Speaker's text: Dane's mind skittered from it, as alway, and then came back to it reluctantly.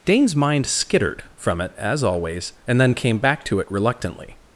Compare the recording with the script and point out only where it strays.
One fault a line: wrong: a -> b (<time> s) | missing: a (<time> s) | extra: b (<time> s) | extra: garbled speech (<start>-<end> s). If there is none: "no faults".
wrong: alway -> always (2.0 s)